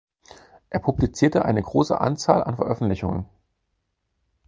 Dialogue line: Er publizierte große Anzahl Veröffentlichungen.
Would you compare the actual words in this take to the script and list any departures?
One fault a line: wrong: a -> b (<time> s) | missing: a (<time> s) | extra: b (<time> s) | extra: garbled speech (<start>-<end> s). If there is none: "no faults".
extra: eine (1.4 s)
extra: an (2.4 s)